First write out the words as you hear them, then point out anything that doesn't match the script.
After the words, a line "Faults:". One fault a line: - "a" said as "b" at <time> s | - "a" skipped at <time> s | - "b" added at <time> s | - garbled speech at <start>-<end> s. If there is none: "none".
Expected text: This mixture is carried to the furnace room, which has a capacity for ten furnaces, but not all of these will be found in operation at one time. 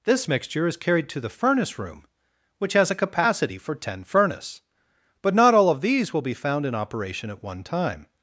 This mixture is carried to the furnace room, which has a capacity for ten furnace, but not all of these will be found in operation at one time.
Faults:
- "furnaces" said as "furnace" at 4.0 s